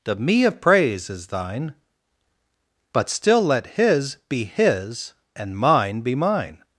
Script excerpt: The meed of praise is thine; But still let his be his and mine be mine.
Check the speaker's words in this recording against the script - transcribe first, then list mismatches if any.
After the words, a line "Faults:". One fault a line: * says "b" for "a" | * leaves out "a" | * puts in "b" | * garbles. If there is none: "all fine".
The me of praise is thine; But still let his be his and mine be mine.
Faults:
* says "me" for "meed"